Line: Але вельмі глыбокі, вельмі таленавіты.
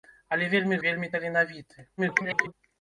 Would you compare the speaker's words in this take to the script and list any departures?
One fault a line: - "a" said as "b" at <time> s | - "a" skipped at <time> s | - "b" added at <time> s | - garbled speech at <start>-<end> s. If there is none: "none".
- "глыбокі" skipped at 0.8 s
- garbled speech at 2.0-2.5 s